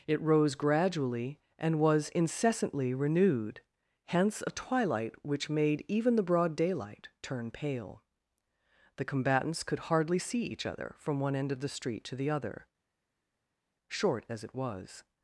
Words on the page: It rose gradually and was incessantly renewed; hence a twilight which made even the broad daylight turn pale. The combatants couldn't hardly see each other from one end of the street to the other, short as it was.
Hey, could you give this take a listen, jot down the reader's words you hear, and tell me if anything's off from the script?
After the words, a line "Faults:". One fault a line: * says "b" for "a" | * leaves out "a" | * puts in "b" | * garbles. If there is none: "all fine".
It rose gradually and was incessantly renewed; hence a twilight which made even the broad daylight turn pale. The combatants could hardly see each other from one end of the street to the other, short as it was.
Faults:
* says "could" for "couldn't"